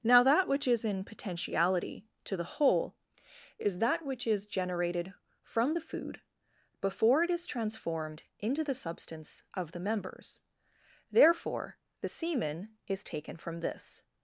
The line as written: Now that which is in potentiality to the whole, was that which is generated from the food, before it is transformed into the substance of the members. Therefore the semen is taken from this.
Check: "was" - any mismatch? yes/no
yes